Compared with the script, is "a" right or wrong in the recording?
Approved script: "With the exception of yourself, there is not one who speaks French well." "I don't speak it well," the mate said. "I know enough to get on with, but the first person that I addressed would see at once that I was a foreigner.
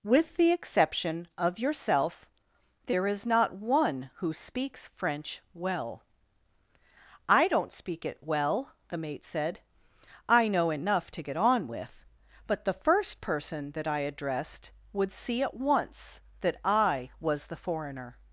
wrong